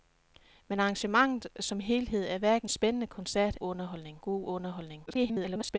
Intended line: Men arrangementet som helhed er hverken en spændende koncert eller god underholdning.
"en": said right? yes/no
no